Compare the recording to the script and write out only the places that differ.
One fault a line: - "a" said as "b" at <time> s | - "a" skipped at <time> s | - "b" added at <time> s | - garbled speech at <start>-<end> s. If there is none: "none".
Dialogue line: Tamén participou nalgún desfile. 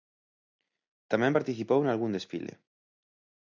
none